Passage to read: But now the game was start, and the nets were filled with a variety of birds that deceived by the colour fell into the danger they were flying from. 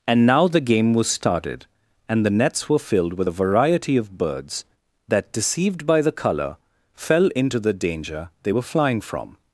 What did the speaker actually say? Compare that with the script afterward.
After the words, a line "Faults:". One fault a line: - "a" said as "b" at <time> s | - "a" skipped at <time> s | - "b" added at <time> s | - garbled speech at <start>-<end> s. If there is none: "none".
And now the game was started, and the nets were filled with a variety of birds that deceived by the colour fell into the danger they were flying from.
Faults:
- "But" said as "And" at 0.1 s
- "start" said as "started" at 1.1 s